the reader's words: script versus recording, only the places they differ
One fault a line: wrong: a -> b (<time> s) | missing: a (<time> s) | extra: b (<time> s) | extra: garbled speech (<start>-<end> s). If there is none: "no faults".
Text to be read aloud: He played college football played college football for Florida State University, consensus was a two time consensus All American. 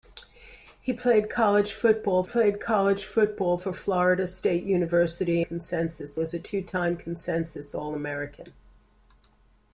no faults